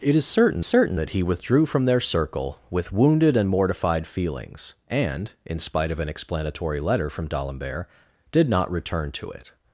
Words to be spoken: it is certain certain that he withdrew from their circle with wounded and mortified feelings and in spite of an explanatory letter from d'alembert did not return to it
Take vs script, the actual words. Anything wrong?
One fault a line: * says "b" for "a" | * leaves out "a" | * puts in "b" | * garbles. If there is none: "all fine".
all fine